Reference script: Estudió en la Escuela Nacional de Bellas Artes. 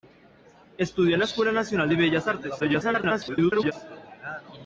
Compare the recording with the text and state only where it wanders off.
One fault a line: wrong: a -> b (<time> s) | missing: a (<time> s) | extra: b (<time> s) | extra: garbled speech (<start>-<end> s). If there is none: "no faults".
extra: garbled speech (2.6-3.7 s)